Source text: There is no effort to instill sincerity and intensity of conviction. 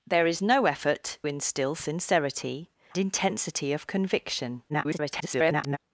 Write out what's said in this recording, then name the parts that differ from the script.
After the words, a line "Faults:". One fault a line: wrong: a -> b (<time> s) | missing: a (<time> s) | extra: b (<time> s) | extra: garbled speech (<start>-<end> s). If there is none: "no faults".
There is no effort instill sincerity intensity of conviction. [garbled]
Faults:
missing: to (1.2 s)
missing: and (2.7 s)
extra: garbled speech (4.7-5.8 s)